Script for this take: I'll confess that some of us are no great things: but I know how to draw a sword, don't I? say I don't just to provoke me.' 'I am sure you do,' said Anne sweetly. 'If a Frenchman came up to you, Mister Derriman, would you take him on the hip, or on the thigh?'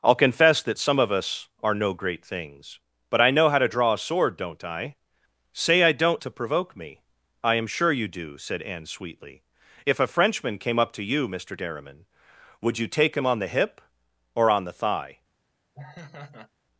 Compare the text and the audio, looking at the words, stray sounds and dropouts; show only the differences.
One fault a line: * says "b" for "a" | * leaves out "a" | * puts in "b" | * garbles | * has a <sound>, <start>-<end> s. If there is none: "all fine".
* leaves out "just"
* has a laugh, 15.7-16.5 s